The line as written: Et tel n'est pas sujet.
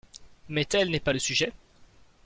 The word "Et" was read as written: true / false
false